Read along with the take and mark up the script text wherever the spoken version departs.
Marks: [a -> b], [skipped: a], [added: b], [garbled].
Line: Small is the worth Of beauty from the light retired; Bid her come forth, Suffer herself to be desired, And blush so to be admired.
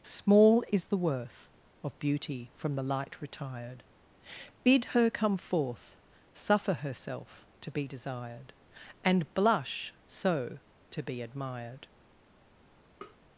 Small is the worth Of beauty from the light retired; Bid her come forth, Suffer herself to be desired, And blush so to be admired.